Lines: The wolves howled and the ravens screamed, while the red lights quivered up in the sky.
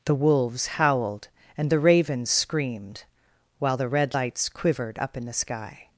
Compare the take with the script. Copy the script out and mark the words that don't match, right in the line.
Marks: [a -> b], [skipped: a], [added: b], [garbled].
The wolves howled and the ravens screamed, while the red lights quivered up in the sky.